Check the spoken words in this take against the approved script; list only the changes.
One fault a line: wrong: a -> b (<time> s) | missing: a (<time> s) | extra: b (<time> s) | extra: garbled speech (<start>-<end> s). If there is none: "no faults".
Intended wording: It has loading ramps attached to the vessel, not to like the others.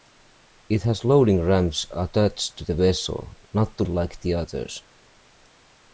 no faults